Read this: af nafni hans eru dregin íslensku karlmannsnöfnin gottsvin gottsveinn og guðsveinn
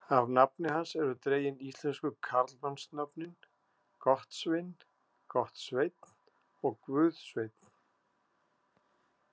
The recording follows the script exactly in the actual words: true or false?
true